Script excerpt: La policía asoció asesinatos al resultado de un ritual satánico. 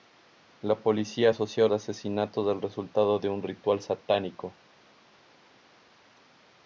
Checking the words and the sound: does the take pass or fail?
pass